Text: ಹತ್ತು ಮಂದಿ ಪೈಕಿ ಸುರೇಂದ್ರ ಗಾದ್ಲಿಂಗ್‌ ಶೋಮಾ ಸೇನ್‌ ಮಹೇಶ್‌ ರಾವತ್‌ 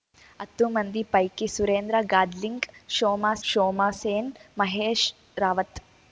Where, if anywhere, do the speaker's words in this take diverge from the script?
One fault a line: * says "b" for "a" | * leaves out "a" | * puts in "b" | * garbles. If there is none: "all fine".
* puts in "ಶೋಮಾ"